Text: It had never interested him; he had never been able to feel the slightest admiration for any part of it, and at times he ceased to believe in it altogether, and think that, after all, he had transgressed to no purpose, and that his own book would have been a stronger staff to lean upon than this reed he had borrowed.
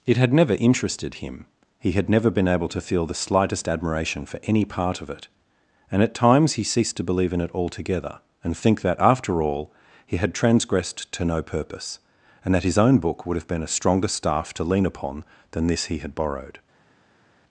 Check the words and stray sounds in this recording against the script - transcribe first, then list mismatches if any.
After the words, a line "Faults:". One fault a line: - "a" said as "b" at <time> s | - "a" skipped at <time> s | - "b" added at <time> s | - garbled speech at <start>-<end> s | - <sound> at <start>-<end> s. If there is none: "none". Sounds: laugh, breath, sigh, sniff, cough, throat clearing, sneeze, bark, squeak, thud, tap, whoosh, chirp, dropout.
It had never interested him; he had never been able to feel the slightest admiration for any part of it, and at times he ceased to believe in it altogether, and think that, after all, he had transgressed to no purpose, and that his own book would have been a stronger staff to lean upon than this he had borrowed.
Faults:
- "reed" skipped at 15.8 s